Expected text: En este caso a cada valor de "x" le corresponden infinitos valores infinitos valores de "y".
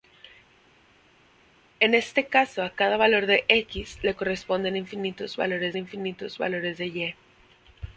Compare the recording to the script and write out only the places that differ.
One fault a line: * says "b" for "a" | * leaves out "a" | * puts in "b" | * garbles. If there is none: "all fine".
all fine